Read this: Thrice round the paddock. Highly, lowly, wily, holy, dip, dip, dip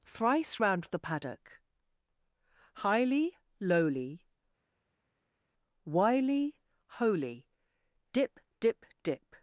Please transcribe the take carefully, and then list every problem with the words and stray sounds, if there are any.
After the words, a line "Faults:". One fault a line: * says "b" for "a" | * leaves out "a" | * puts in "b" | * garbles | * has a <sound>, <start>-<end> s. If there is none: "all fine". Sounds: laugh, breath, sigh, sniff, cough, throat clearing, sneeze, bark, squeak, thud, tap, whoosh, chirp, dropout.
Thrice round the paddock. Highly, lowly, wily, holy, dip, dip, dip
Faults:
all fine